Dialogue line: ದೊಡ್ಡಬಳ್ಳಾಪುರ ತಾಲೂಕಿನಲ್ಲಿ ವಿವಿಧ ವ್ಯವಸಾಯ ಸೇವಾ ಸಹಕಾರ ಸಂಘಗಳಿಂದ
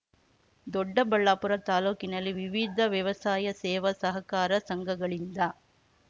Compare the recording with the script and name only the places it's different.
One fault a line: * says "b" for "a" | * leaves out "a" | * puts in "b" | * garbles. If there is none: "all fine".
all fine